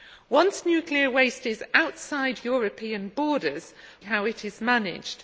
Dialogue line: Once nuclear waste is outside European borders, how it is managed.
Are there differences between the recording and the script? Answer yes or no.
no